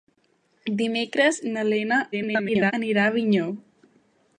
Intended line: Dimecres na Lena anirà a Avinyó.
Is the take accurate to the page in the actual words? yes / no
no